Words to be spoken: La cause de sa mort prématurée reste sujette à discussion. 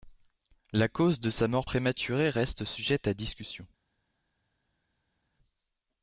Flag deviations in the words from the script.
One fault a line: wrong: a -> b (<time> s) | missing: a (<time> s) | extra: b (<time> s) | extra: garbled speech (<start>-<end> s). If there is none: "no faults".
no faults